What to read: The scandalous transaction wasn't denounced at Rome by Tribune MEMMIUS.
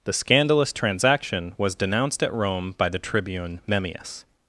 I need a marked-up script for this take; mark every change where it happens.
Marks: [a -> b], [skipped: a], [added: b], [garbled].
The scandalous transaction [wasn't -> was] denounced at Rome by [added: the] Tribune MEMMIUS.